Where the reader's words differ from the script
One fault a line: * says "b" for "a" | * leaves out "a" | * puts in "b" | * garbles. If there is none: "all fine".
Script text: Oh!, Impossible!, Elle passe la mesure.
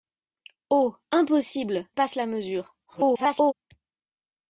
* leaves out "Elle"
* garbles